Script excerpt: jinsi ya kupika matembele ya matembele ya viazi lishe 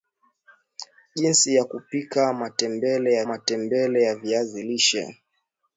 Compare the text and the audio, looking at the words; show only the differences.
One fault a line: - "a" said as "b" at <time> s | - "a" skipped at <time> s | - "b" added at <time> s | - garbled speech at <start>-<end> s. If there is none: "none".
none